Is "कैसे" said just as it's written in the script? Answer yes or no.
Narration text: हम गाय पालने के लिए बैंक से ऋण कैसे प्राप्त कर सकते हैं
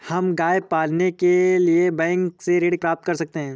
no